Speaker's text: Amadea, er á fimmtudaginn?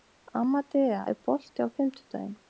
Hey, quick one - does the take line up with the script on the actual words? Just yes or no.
no